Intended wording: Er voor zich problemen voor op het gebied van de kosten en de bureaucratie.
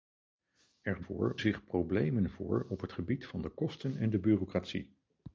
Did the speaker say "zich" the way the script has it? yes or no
yes